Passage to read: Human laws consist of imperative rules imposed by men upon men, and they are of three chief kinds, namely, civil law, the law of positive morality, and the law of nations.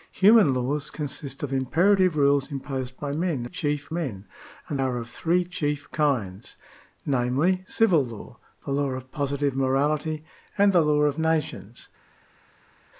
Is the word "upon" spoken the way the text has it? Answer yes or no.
no